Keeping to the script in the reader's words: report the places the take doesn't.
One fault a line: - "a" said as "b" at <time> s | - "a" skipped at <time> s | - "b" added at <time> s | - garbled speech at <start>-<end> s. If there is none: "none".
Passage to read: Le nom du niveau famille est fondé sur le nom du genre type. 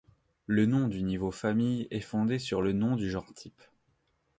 none